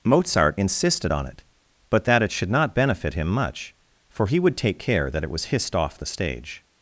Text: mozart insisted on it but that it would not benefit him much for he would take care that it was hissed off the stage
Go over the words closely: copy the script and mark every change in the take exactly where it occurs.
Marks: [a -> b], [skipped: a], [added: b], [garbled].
mozart insisted on it but that it [would -> should] not benefit him much for he would take care that it was hissed off the stage